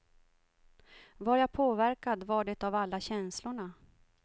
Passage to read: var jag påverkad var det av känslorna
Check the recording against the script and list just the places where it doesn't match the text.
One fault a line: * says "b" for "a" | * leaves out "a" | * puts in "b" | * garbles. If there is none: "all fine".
* puts in "alla"